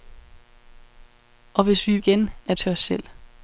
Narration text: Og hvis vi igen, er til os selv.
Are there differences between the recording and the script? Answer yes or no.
no